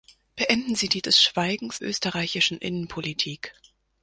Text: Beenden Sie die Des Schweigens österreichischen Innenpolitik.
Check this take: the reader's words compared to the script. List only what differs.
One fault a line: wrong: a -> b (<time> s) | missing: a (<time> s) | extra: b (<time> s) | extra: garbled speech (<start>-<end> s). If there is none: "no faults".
no faults